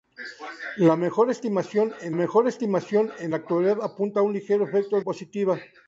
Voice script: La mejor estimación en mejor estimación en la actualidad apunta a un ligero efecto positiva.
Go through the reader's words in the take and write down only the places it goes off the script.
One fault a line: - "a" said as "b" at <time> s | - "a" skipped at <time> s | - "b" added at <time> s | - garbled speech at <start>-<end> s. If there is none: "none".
none